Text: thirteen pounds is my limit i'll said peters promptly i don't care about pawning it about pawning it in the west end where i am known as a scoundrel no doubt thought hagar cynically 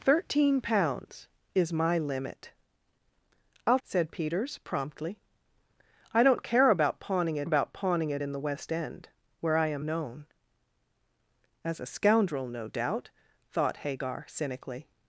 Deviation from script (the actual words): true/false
false